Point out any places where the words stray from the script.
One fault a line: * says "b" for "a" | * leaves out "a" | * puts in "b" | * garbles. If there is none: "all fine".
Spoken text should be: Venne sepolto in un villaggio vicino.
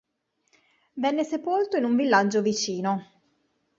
all fine